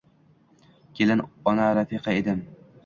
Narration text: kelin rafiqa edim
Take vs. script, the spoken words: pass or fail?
fail